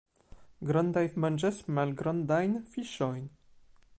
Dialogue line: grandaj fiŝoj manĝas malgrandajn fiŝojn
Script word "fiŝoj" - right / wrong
wrong